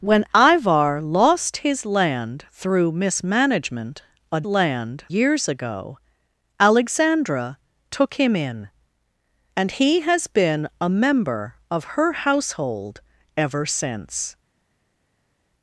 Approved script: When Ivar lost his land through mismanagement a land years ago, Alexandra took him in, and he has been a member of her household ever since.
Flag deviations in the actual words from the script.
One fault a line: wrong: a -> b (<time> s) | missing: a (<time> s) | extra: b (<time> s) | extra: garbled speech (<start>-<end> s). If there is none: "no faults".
no faults